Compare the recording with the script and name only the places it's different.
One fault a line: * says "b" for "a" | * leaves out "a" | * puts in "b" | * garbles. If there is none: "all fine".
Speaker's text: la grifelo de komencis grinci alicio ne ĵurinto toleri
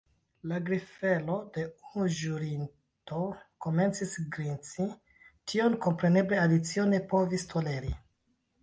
* puts in "unu ĵurinto"
* puts in "tion kompreneble"
* says "povis" for "ĵurinto"